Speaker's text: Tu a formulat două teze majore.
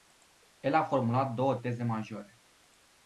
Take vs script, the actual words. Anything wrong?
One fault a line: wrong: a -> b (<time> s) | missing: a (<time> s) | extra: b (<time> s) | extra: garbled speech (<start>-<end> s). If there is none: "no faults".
wrong: Tu -> El (0.6 s)